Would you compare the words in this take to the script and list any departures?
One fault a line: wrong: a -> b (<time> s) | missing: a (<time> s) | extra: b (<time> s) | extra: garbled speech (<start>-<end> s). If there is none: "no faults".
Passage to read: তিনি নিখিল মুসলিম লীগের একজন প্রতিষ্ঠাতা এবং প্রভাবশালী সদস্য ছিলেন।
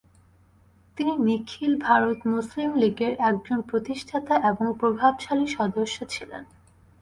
extra: ভারত (1.8 s)